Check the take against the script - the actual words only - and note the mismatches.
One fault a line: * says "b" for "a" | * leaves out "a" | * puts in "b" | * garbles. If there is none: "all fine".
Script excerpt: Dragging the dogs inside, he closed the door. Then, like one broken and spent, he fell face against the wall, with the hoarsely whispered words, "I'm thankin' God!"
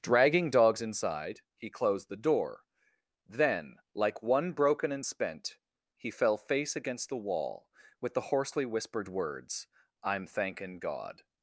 * leaves out "the"